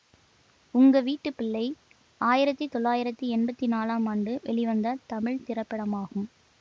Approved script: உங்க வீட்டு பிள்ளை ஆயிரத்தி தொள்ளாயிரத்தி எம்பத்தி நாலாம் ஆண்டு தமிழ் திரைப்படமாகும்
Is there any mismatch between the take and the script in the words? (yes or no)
yes